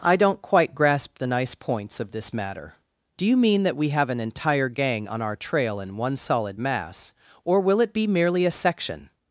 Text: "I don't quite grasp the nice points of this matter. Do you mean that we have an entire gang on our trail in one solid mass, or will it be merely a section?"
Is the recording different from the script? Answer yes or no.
no